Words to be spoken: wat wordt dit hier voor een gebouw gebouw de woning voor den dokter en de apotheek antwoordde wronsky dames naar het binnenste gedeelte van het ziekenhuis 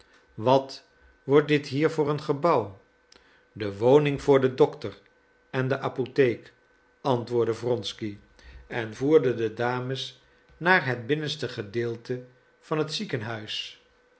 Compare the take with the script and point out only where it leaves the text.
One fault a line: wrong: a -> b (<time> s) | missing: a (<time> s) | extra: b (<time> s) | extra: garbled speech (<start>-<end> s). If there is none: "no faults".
missing: gebouw (2.8 s)
extra: en voerde de (8.7 s)